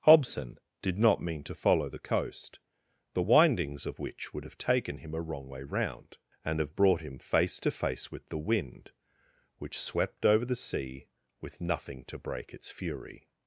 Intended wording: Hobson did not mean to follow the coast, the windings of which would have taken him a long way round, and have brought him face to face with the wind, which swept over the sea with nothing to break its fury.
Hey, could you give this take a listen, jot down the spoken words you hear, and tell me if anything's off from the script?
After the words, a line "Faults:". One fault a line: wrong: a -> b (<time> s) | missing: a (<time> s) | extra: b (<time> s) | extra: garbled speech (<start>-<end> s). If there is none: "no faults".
Hobson did not mean to follow the coast, the windings of which would have taken him a wrong way round, and have brought him face to face with the wind, which swept over the sea with nothing to break its fury.
Faults:
wrong: long -> wrong (5.2 s)